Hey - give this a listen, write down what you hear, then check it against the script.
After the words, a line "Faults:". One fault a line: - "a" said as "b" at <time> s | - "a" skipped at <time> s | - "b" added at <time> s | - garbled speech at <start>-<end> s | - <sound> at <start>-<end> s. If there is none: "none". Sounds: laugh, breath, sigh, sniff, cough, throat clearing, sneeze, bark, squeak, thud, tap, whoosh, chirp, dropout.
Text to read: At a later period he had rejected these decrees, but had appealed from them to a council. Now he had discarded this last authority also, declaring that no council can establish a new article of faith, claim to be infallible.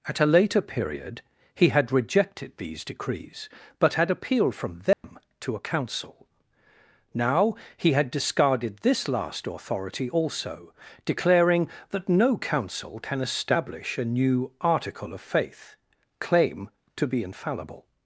At a later period he had rejected these decrees, but had appealed from them to a council. Now he had discarded this last authority also, declaring that no council can establish a new article of faith, claim to be infallible.
Faults:
- dropout at 4.9-5.0 s